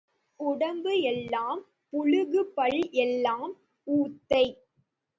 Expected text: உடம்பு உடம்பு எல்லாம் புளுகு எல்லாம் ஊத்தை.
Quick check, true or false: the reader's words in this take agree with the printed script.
false